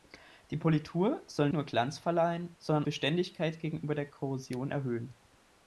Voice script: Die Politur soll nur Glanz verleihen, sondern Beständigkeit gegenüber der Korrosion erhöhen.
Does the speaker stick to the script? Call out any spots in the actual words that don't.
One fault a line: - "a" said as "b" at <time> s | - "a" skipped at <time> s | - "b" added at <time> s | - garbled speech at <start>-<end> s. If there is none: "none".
none